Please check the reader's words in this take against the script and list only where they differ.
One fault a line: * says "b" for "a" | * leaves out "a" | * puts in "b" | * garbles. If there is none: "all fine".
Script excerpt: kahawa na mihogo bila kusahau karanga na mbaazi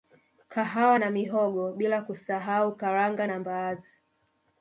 all fine